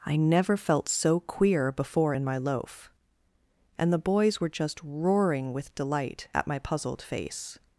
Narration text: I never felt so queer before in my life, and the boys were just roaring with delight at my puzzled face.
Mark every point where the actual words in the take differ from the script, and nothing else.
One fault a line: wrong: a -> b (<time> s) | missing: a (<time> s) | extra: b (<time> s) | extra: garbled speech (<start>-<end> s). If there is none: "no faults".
wrong: life -> loaf (2.4 s)